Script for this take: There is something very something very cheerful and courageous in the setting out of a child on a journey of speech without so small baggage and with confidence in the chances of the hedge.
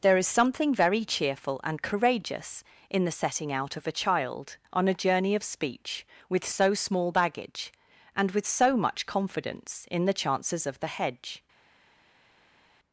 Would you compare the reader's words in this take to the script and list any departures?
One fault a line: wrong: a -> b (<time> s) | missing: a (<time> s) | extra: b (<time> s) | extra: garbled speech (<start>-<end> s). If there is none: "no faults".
missing: something very (1.1 s)
wrong: without -> with (6.3 s)
extra: so much (8.5 s)